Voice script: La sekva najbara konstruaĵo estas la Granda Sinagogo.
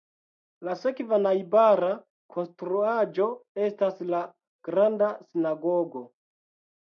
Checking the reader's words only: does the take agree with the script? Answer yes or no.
yes